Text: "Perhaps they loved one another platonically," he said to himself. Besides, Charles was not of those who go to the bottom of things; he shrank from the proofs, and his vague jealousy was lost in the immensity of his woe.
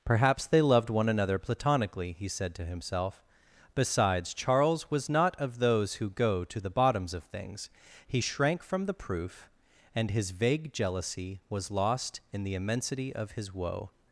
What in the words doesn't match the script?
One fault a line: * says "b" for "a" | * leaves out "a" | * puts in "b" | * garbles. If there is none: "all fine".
* says "bottoms" for "bottom"
* says "proof" for "proofs"